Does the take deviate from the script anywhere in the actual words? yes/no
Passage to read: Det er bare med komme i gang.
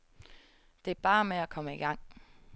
yes